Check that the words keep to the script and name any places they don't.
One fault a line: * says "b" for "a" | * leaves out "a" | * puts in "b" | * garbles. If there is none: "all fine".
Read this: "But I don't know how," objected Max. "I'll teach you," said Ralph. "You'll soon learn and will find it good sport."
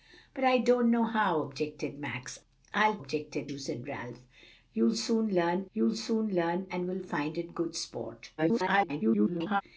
* says "objected" for "teach"
* puts in "you'll soon learn"
* garbles